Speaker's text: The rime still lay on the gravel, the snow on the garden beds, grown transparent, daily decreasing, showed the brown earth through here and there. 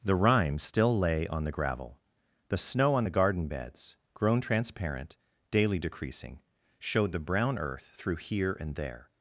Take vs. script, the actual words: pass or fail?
pass